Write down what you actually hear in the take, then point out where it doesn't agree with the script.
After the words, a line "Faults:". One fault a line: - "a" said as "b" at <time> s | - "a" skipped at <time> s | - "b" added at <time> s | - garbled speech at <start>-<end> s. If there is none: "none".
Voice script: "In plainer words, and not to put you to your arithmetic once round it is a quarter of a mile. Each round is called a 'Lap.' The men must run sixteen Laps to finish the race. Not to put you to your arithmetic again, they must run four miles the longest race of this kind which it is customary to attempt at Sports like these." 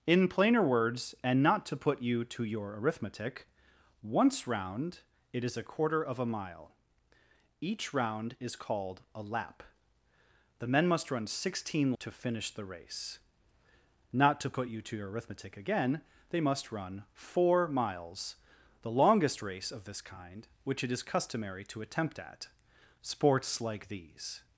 "In plainer words, and not to put you to your arithmetic once round it is a quarter of a mile. Each round is called a 'Lap.' The men must run sixteen To finish the race. Not to put you to your arithmetic again, they must run four miles the longest race of this kind which it is customary to attempt at Sports like these."
Faults:
- "Laps" skipped at 11.9 s